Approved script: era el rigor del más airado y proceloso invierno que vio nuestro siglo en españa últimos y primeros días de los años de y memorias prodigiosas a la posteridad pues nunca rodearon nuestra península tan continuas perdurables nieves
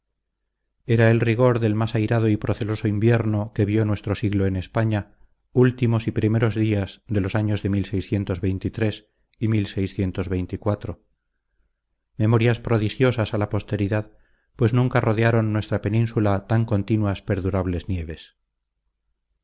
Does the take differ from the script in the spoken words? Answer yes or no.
no